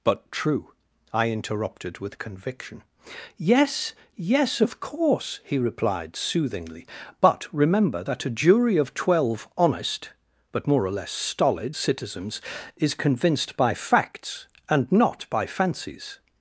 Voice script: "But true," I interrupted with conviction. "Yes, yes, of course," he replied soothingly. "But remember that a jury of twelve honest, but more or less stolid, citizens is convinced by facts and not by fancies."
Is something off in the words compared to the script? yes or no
no